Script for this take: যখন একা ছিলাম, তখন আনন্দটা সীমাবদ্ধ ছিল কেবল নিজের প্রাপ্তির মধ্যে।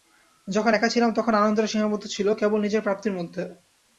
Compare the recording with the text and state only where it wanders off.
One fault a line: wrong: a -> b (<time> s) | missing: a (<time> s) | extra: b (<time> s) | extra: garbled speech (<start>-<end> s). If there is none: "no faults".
no faults